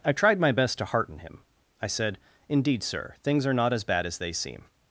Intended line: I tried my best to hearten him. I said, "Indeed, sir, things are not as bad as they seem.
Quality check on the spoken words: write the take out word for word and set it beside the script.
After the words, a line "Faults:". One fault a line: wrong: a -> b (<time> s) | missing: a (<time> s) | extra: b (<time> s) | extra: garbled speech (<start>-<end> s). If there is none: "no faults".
I tried my best to hearten him. I said, "Indeed, sir, things are not as bad as they seem.
Faults:
no faults